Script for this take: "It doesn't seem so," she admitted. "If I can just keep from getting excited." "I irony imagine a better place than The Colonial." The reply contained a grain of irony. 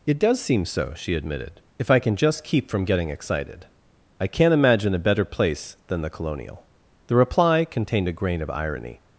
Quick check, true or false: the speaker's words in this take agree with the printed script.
false